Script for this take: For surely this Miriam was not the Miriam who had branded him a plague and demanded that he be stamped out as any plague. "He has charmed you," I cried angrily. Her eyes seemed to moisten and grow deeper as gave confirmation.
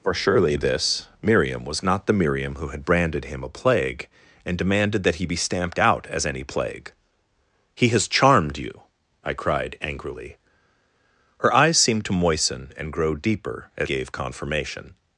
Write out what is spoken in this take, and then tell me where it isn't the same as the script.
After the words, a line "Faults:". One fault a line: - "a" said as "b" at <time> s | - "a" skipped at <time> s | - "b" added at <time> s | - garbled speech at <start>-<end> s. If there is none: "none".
For surely this Miriam was not the Miriam who had branded him a plague and demanded that he be stamped out as any plague. "He has charmed you," I cried angrily. Her eyes seemed to moisten and grow deeper as gave confirmation.
Faults:
none